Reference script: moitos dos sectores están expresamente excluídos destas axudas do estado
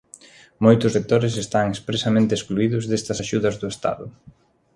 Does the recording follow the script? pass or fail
fail